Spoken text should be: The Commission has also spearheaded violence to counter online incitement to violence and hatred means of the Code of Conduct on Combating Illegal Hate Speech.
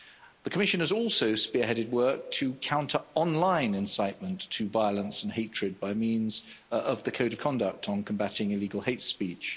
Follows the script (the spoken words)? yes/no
no